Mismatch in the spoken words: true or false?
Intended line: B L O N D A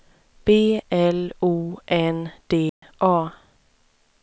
false